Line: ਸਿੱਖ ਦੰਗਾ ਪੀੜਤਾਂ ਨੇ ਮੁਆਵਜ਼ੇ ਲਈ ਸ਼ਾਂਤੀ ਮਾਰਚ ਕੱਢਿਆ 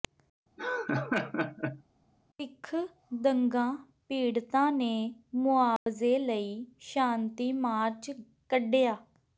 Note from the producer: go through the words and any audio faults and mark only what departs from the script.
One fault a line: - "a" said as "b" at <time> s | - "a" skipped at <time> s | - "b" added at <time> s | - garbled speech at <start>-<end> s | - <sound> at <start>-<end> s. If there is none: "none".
- laugh at 0.6-1.8 s
- dropout at 5.8-5.9 s